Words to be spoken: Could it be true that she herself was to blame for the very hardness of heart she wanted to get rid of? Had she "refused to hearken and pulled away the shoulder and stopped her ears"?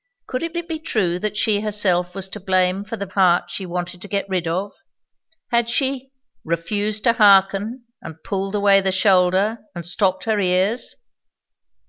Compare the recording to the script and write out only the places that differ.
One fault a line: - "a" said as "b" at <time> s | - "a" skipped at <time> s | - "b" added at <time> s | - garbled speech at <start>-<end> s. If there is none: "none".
- "it" added at 0.5 s
- "very hardness of" skipped at 3.1 s